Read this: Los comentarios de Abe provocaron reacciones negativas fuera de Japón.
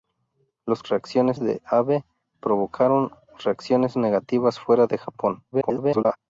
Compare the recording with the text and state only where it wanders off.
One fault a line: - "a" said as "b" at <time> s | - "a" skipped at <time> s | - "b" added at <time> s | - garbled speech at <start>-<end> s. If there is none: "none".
- "comentarios" said as "reacciones" at 0.9 s
- garbled speech at 5.5-6.2 s